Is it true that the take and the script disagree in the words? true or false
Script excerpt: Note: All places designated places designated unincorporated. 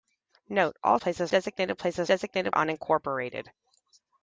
false